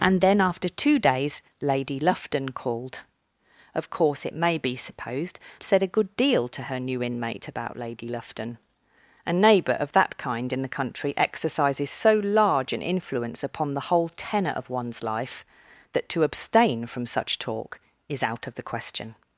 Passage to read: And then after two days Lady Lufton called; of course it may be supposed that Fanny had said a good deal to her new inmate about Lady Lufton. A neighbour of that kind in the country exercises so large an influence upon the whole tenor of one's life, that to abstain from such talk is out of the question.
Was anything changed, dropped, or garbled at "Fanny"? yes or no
yes